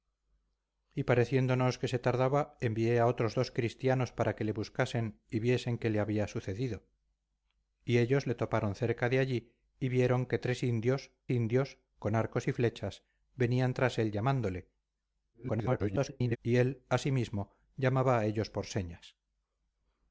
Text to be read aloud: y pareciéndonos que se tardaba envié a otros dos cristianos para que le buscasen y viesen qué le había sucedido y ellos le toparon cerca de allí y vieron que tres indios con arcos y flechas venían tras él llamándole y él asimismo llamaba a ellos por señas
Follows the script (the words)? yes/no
no